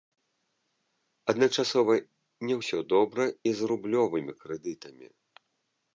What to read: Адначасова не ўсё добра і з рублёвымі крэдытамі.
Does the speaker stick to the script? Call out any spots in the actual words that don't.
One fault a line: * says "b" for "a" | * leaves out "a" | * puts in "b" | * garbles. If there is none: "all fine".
all fine